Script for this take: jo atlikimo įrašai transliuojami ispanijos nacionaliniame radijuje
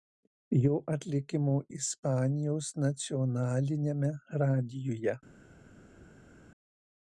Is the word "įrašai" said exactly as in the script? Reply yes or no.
no